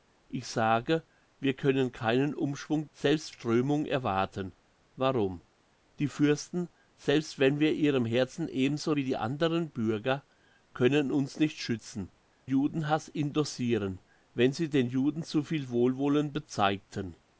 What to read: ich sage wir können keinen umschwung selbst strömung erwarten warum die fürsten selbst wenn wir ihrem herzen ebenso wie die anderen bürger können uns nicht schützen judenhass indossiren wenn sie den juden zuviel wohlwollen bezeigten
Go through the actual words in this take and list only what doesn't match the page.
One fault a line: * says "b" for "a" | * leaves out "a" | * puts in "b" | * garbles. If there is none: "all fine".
all fine